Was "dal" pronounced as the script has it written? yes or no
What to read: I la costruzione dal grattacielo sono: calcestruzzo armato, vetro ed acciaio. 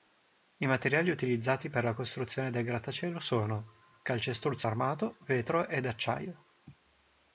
no